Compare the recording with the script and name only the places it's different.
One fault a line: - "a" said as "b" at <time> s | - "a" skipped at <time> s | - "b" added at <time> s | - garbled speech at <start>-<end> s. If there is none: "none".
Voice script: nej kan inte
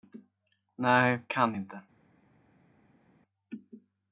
none